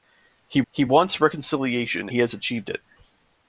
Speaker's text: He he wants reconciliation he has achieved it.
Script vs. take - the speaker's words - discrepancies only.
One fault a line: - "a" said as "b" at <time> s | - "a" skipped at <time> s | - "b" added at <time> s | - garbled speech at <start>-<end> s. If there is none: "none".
none